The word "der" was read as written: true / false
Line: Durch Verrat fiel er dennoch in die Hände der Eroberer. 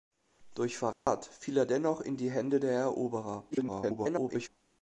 true